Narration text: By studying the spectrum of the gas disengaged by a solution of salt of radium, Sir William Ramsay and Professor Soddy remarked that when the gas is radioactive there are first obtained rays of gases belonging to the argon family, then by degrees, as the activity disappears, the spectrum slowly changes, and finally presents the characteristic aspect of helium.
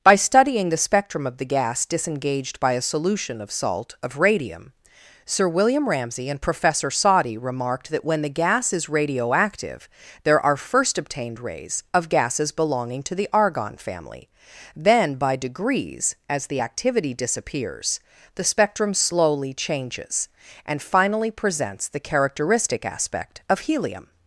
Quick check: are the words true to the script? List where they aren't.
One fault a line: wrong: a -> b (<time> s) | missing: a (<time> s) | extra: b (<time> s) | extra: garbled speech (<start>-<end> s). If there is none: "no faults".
no faults